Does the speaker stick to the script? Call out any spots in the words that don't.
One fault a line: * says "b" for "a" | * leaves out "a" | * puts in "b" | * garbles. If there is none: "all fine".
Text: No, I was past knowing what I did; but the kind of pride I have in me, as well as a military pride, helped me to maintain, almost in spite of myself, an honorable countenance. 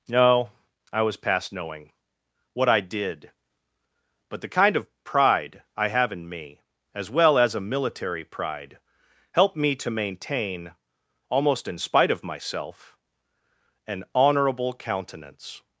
all fine